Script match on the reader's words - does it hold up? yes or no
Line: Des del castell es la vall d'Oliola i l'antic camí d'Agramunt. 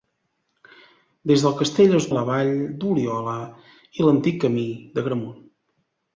yes